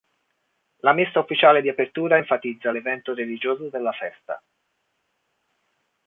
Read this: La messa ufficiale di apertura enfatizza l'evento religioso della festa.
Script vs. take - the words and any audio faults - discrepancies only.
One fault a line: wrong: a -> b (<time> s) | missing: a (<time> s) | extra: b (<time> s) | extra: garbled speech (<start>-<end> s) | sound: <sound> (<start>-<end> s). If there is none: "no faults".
no faults